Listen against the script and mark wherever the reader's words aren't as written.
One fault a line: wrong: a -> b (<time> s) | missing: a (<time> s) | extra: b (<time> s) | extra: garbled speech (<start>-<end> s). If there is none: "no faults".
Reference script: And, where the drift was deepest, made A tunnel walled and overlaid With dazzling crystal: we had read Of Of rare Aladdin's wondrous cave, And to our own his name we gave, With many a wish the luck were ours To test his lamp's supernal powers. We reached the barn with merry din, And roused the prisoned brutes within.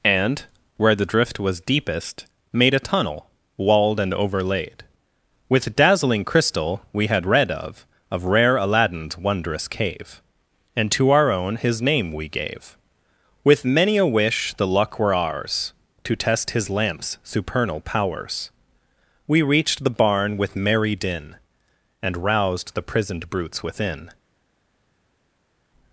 no faults